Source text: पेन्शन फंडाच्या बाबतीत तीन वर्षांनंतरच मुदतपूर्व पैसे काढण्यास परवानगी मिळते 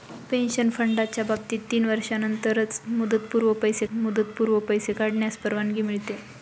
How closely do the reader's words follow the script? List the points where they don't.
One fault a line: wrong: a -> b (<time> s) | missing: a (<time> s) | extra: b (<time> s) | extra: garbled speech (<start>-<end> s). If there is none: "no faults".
extra: मुदतपूर्व पैसे (3.9 s)